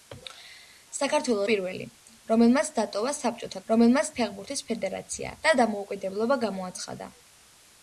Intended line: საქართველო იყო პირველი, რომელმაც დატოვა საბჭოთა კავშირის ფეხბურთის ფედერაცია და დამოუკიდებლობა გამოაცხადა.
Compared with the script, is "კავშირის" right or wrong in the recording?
wrong